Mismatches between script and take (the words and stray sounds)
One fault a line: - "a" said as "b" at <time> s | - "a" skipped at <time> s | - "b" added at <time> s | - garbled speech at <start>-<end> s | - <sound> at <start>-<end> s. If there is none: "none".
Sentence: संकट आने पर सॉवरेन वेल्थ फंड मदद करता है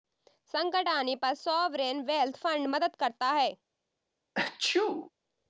- sneeze at 4.3-5.1 s